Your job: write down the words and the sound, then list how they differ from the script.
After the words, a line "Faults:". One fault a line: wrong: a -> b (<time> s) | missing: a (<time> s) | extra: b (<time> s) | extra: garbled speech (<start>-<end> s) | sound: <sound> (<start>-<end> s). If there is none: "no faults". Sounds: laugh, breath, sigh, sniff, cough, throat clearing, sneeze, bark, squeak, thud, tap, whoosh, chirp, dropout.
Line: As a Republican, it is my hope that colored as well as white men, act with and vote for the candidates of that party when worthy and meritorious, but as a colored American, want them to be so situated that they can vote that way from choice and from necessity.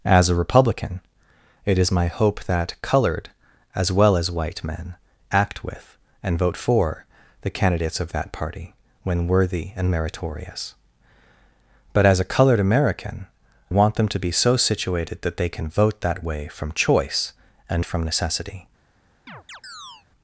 As a Republican, it is my hope that colored as well as white men, act with and vote for the candidates of that party when worthy and meritorious, but as a colored American, want them to be so situated that they can vote that way from choice and from necessity.
Faults:
sound: chirp (19.3-20.1 s)